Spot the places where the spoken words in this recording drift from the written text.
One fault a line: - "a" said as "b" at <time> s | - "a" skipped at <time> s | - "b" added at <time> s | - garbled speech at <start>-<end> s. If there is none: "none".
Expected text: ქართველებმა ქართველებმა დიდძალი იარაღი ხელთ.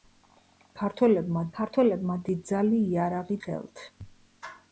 none